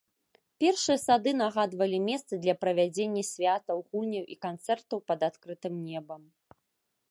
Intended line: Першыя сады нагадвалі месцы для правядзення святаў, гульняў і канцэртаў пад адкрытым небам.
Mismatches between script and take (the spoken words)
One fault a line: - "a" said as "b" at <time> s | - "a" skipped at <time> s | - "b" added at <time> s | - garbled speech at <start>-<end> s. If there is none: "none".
none